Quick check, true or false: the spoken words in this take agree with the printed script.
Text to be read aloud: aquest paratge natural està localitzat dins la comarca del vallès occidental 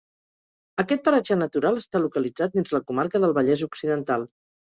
true